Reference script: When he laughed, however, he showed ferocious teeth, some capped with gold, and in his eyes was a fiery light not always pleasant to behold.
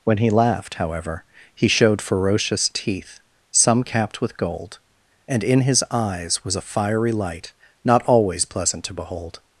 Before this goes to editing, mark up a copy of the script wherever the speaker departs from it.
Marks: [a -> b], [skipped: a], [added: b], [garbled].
When he laughed, however, he showed ferocious teeth, some capped with gold, and in his eyes was a fiery light not always pleasant to behold.